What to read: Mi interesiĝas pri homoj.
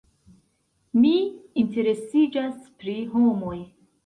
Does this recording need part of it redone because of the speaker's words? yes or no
no